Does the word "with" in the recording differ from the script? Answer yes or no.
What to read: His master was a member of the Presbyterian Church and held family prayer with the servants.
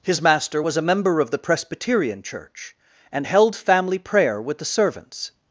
no